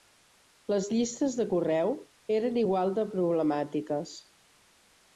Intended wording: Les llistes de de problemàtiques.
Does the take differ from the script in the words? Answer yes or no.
yes